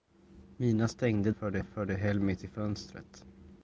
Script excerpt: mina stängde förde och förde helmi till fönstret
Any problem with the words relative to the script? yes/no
no